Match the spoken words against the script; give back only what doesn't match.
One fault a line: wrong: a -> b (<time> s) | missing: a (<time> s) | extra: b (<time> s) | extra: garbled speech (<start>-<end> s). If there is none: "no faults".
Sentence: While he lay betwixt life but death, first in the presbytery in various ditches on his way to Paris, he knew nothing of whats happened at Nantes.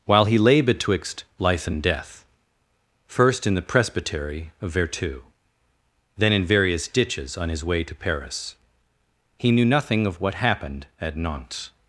wrong: but -> and (1.7 s)
extra: of Vertou then (4.6 s)
wrong: whats -> what (10.2 s)